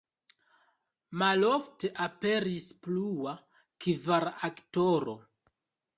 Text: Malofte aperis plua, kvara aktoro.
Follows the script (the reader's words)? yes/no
yes